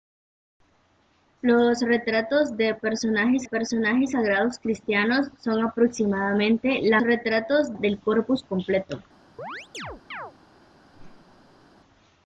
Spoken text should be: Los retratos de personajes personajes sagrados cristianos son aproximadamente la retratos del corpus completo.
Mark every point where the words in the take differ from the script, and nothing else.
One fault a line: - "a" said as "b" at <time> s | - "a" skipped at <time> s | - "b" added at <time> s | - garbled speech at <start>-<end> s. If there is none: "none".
none